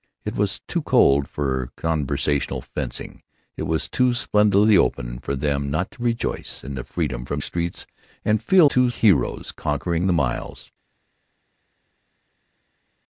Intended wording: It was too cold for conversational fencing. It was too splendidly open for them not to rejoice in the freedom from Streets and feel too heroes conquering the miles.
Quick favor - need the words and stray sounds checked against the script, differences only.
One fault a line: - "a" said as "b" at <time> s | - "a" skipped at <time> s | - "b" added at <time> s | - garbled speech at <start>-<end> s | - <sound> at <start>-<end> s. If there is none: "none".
none